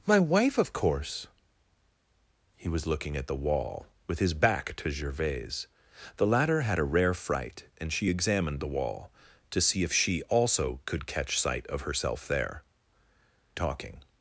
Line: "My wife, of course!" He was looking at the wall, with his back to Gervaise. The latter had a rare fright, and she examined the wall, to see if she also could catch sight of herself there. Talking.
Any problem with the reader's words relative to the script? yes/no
no